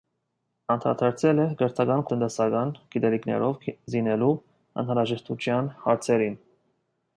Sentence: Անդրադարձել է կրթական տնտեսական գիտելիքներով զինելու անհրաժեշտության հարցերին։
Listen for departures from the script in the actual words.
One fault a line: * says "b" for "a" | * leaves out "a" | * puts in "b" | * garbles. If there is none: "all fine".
all fine